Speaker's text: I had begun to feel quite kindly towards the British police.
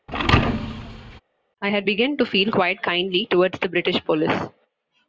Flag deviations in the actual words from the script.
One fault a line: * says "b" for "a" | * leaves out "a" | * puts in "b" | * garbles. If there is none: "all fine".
all fine